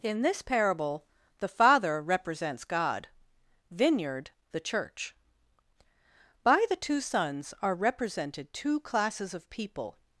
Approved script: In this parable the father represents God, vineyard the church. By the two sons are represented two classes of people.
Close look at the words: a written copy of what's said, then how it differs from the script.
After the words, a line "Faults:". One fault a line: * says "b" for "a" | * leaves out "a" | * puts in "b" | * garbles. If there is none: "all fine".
In this parable the father represents God, vineyard the church. By the two sons are represented two classes of people.
Faults:
all fine